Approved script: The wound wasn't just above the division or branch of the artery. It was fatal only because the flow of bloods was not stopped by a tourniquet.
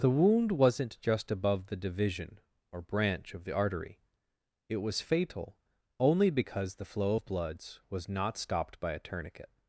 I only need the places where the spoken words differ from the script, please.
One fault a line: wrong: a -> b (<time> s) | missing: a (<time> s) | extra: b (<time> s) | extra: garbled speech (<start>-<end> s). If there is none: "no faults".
no faults